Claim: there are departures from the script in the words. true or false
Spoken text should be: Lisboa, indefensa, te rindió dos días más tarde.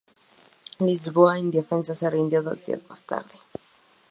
true